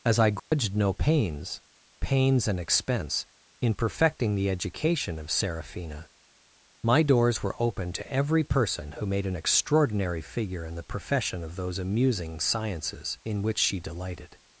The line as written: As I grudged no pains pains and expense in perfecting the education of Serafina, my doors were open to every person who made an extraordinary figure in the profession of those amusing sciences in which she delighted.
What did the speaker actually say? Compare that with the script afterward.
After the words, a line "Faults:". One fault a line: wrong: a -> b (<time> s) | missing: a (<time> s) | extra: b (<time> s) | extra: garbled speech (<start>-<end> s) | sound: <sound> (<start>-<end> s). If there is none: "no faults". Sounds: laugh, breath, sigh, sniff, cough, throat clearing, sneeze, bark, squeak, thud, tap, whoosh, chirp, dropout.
As I grudged no pains pains and expense in perfecting the education of Serafina, my doors were open to every person who made an extraordinary figure in the profession of those amusing sciences in which she delighted.
Faults:
sound: dropout (0.4-0.5 s)